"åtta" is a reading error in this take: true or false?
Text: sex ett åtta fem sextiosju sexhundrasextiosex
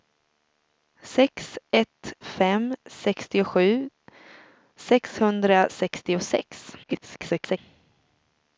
true